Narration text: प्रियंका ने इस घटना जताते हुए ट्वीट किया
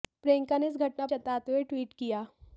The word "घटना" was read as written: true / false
true